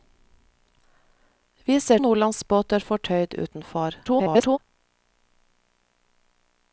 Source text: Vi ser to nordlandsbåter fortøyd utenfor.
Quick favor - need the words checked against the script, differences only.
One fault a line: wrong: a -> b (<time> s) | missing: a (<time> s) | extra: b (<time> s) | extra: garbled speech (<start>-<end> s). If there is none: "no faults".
missing: to (2.0 s)
extra: garbled speech (4.0-4.6 s)